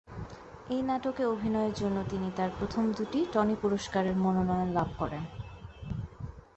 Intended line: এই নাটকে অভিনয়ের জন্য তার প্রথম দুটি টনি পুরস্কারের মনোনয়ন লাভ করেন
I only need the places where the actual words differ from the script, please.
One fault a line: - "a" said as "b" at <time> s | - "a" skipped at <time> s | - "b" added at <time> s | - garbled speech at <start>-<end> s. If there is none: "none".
- "তিনি" added at 2.1 s